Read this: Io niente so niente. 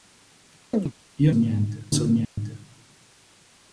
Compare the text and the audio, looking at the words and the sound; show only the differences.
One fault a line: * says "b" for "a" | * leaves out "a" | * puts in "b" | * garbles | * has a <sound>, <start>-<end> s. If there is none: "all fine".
* has a chirp, 0.7-0.9 s
* has a dropout, 2.2-2.4 s